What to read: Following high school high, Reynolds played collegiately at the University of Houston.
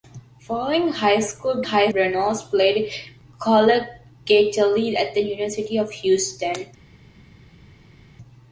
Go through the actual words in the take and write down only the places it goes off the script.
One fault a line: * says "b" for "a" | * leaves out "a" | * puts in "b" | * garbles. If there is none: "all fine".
all fine